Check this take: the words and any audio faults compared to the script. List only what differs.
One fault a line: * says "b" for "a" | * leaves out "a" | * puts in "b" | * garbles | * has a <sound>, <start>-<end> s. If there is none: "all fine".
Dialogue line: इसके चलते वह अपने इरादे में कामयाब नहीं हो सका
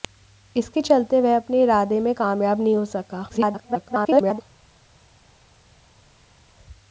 * garbles